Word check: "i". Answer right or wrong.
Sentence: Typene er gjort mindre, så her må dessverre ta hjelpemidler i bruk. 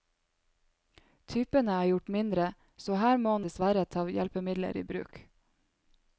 right